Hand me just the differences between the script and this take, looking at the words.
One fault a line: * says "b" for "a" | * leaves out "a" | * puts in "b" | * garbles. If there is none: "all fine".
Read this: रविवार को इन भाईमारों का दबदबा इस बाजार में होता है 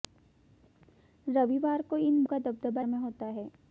* leaves out "भाईमारों"
* leaves out "इस बाजार"